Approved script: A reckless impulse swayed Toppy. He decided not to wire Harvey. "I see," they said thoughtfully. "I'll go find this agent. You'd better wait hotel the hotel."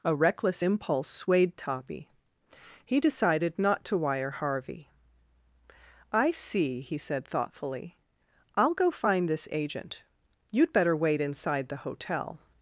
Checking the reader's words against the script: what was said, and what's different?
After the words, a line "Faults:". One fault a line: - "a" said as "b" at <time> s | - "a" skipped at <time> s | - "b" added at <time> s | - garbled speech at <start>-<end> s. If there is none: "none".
A reckless impulse swayed Toppy. He decided not to wire Harvey. "I see," he said thoughtfully. "I'll go find this agent. You'd better wait inside the hotel."
Faults:
- "they" said as "he" at 6.8 s
- "hotel" said as "inside" at 11.2 s